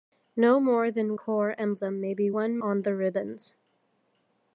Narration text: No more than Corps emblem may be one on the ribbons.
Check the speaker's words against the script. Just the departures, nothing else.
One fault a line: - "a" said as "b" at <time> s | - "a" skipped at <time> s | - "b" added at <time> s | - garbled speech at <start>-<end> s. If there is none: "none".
none